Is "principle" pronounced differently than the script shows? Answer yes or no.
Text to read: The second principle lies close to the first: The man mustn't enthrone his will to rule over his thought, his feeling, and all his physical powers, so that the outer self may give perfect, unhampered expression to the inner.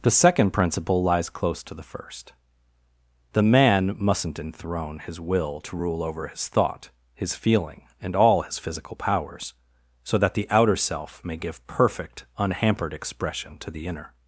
no